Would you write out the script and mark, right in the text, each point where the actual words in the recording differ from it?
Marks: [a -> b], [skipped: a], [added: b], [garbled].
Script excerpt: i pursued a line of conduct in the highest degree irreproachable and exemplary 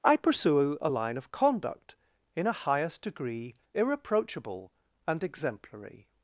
i [pursued -> pursue] a line of conduct in [the -> a] highest degree irreproachable and exemplary